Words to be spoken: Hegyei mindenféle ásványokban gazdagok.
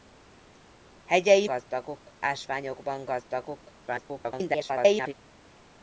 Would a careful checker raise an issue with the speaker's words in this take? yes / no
yes